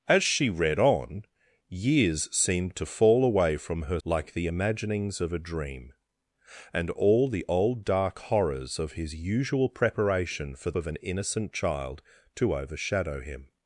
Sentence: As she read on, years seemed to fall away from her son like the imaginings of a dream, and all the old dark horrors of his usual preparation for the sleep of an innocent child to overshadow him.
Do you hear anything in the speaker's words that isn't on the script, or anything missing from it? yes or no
yes